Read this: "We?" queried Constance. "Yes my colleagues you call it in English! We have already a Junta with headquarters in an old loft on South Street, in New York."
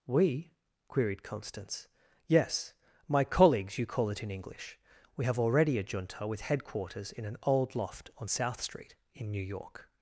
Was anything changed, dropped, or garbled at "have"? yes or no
no